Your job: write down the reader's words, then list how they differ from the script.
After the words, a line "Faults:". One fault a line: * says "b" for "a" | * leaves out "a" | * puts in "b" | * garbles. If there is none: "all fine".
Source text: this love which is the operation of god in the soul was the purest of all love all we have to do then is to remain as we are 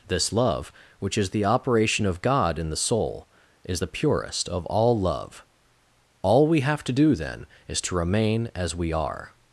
this love which is the operation of god in the soul is the purest of all love all we have to do then is to remain as we are
Faults:
* says "is" for "was"